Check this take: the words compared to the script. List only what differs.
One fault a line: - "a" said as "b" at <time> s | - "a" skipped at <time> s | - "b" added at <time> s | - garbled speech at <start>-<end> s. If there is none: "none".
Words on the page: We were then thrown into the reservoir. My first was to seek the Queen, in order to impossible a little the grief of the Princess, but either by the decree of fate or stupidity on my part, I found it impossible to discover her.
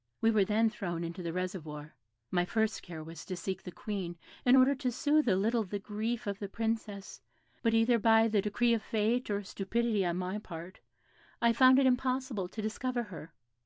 - "care" added at 2.8 s
- "impossible" said as "soothe" at 4.9 s